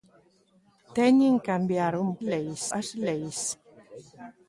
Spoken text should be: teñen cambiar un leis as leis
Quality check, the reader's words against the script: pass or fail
pass